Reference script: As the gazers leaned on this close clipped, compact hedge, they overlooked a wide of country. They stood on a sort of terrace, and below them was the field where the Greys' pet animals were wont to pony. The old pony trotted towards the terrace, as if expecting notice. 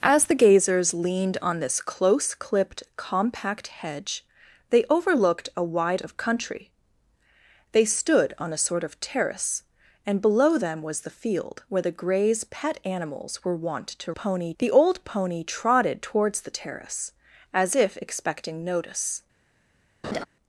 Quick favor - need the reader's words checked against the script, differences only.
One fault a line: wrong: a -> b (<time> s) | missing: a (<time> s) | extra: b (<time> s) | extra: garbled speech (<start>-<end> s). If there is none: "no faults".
no faults